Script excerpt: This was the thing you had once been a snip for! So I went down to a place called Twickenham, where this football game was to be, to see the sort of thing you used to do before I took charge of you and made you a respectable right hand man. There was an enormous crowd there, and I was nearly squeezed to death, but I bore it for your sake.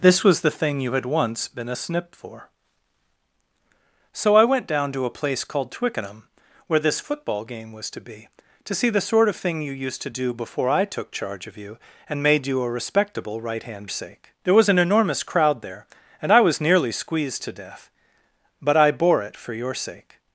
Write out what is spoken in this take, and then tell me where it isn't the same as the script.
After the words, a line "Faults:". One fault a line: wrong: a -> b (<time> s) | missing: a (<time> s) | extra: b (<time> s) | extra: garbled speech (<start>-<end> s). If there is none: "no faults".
This was the thing you had once been a snip for! So I went down to a place called Twickenham, where this football game was to be, to see the sort of thing you used to do before I took charge of you and made you a respectable right hand sake. There was an enormous crowd there, and I was nearly squeezed to death, but I bore it for your sake.
Faults:
wrong: man -> sake (13.9 s)